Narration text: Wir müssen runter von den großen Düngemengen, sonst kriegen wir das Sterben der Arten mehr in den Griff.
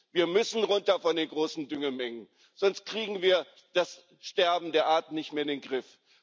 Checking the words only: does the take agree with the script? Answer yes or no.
no